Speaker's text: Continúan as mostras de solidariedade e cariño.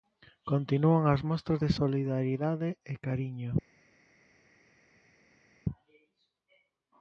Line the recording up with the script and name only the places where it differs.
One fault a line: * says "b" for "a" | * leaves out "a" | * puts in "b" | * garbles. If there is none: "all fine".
all fine